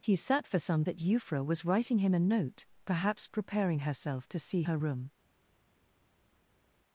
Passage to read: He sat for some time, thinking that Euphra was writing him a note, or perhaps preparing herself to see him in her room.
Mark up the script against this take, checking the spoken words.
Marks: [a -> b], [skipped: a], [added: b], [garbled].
He sat for some [skipped: time, thinking] that Euphra was writing him a note, [skipped: or] perhaps preparing herself to see [skipped: him in] her room.